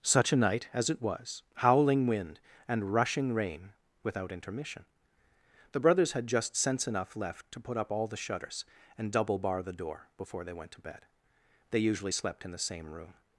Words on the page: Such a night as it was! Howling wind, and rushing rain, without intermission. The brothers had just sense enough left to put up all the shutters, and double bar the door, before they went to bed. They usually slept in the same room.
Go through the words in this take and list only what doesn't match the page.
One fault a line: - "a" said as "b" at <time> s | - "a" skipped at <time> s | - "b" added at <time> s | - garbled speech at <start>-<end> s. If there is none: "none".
none